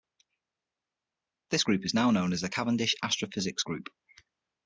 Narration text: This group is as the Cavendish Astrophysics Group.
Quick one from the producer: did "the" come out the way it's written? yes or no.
yes